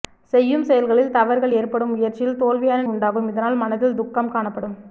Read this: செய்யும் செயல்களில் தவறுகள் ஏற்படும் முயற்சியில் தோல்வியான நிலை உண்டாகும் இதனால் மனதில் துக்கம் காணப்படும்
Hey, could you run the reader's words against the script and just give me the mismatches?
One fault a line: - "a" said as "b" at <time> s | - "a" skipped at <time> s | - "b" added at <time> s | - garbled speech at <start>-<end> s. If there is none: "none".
- "நிலை" skipped at 2.9 s